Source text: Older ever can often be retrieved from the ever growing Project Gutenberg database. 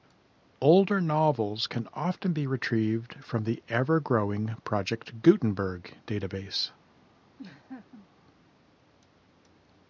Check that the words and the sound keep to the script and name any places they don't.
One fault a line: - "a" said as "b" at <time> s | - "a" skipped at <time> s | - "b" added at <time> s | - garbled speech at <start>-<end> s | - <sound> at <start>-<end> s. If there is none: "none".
- "ever" said as "novels" at 1.0 s
- laugh at 7.4-8.1 s